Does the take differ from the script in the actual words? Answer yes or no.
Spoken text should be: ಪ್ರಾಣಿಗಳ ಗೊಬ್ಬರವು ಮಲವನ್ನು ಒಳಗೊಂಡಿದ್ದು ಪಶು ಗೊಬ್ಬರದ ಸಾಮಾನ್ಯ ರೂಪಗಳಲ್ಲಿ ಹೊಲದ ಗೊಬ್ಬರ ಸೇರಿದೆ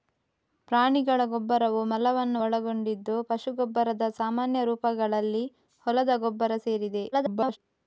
yes